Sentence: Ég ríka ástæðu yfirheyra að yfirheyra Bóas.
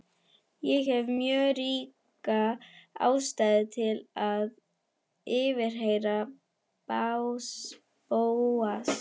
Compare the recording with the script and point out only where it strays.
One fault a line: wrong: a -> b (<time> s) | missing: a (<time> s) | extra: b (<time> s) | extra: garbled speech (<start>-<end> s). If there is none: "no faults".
extra: hef mjög (0.9 s)
wrong: yfirheyra -> til (3.8 s)